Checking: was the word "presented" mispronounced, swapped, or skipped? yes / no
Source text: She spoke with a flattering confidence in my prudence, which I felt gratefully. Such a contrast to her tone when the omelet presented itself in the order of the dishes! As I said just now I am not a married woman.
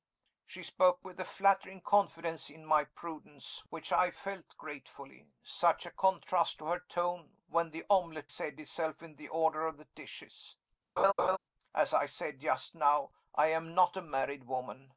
yes